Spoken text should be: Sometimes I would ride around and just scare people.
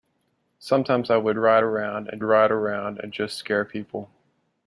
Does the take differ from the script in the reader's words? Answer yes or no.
yes